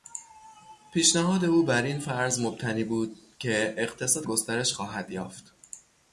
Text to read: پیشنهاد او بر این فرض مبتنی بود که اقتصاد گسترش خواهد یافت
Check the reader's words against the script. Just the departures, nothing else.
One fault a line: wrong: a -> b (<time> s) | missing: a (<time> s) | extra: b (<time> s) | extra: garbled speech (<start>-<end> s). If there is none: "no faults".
no faults